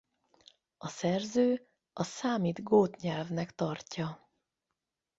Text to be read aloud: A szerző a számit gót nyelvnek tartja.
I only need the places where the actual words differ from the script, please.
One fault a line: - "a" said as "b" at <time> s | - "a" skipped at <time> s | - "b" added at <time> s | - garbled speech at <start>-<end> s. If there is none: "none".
none